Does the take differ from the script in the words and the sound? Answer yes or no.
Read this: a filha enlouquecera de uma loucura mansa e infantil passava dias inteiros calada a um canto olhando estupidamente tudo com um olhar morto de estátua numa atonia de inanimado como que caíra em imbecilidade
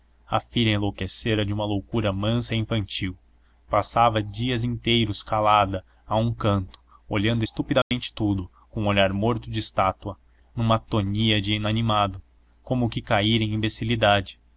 yes